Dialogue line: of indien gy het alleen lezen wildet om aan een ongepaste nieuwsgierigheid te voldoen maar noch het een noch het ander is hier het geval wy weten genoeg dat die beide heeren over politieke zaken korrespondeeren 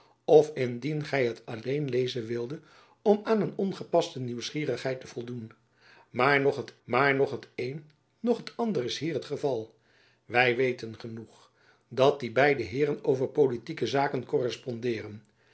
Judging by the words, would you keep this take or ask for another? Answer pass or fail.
fail